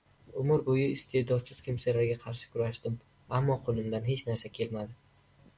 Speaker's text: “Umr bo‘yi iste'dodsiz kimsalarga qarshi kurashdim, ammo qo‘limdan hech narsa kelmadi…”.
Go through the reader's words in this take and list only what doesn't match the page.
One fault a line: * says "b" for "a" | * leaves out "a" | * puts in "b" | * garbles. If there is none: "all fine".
all fine